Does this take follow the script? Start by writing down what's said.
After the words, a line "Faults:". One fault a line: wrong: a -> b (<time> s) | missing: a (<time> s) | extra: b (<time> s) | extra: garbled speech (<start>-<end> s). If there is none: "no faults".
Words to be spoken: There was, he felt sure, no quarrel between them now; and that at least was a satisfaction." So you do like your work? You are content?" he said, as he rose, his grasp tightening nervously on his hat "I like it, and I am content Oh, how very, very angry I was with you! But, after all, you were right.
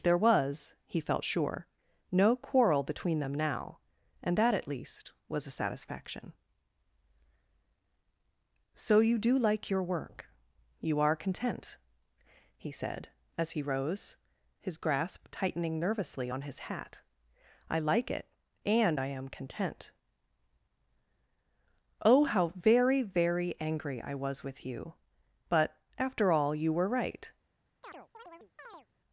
There was, he felt sure, no quarrel between them now; and that at least was a satisfaction." So you do like your work? You are content?" he said, as he rose, his grasp tightening nervously on his hat "I like it, and I am content Oh, how very, very angry I was with you! But, after all, you were right.
Faults:
no faults